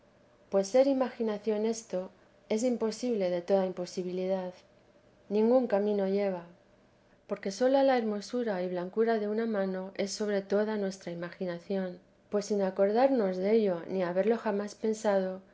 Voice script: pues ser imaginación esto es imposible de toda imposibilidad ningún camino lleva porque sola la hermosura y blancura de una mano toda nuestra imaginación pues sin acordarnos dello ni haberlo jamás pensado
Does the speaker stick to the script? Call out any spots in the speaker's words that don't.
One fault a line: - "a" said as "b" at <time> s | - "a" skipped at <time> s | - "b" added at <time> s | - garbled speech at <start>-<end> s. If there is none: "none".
- "es sobre" added at 9.9 s